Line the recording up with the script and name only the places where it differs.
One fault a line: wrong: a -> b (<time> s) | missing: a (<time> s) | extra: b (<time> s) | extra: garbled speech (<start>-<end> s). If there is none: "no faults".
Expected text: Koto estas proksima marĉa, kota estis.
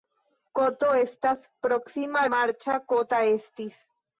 no faults